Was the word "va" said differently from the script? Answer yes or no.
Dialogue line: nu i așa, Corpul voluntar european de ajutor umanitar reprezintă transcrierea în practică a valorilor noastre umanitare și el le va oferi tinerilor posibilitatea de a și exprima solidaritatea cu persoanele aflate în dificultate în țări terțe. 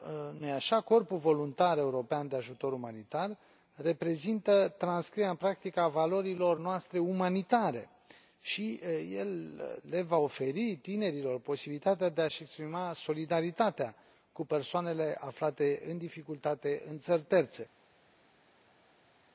no